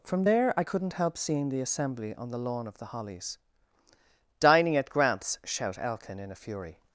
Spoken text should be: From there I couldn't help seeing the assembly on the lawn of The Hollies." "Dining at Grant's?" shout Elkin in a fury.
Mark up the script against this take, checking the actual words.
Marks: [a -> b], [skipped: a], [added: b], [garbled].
From there I couldn't help seeing the assembly on the lawn of The Hollies." "Dining at Grant's?" shout Elkin in a fury.